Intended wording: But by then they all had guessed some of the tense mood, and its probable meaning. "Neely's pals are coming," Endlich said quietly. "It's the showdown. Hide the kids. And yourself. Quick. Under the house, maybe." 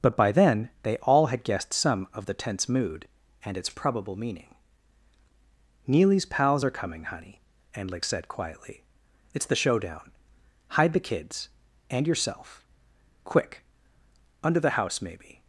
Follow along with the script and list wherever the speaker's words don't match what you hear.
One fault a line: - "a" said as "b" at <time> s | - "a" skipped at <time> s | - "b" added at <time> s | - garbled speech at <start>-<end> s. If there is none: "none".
- "Honey" added at 7.0 s